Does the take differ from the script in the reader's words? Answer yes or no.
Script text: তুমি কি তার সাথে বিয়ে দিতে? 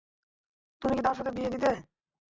no